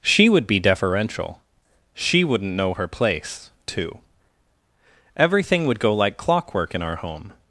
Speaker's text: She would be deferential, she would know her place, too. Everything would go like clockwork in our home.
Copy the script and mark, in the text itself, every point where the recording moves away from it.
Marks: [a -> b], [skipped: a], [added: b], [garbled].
She would be deferential, she [would -> wouldn't] know her place, too. Everything would go like clockwork in our home.